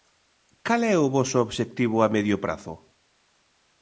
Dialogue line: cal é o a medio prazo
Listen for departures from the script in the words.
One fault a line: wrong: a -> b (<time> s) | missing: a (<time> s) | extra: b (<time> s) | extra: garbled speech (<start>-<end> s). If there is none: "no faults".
extra: voso obxectivo (1.1 s)